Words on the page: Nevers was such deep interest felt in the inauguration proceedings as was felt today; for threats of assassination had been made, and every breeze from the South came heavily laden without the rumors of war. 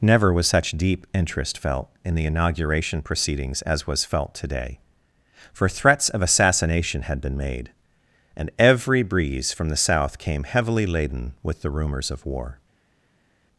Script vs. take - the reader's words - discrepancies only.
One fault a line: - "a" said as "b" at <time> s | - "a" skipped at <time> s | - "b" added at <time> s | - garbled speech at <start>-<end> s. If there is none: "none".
- "Nevers" said as "Never" at 0.0 s
- "without" said as "with" at 11.4 s